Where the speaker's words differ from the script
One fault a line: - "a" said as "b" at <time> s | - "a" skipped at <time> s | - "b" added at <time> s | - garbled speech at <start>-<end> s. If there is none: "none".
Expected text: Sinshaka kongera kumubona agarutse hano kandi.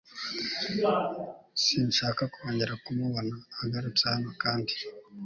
none